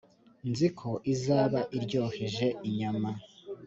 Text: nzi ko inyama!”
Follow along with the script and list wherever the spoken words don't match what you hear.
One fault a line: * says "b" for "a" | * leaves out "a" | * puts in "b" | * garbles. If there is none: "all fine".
* puts in "izaba iryoheje"